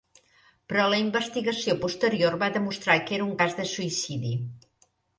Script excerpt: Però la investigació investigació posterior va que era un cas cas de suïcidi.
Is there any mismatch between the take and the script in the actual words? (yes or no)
yes